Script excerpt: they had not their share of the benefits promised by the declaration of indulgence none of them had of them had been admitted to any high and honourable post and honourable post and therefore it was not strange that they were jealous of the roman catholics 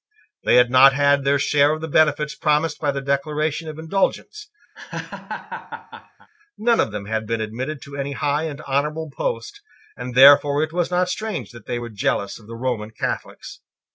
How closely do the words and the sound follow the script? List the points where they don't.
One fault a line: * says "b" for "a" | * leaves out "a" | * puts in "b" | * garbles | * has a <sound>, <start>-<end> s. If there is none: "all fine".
* puts in "had"
* has a laugh, 4.7-6.3 s
* leaves out "of them had"
* leaves out "honourable post and"